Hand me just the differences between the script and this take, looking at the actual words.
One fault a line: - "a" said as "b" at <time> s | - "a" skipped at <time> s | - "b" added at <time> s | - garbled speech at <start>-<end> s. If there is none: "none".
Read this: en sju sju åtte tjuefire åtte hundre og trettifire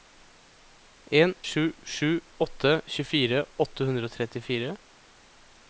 none